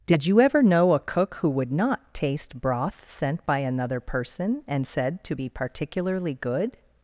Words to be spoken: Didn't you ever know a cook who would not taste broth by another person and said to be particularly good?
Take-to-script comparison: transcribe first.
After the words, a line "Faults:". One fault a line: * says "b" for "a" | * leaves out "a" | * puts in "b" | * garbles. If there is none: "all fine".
Did you ever know a cook who would not taste broth sent by another person and said to be particularly good?
Faults:
* says "Did" for "Didn't"
* puts in "sent"